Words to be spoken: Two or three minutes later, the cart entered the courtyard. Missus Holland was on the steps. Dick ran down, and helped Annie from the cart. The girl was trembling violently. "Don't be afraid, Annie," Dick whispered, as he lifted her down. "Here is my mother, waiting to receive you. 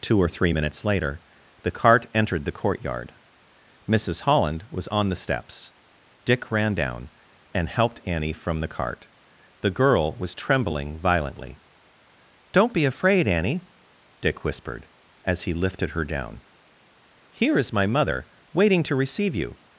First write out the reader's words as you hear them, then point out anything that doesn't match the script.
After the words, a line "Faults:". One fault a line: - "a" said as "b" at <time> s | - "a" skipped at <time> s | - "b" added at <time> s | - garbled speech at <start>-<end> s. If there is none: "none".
Two or three minutes later, the cart entered the courtyard. Missus Holland was on the steps. Dick ran down, and helped Annie from the cart. The girl was trembling violently. "Don't be afraid, Annie," Dick whispered, as he lifted her down. "Here is my mother, waiting to receive you.
Faults:
none